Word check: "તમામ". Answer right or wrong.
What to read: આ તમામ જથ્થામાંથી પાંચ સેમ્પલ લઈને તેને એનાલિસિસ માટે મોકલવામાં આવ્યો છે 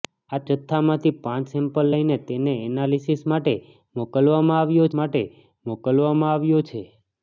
wrong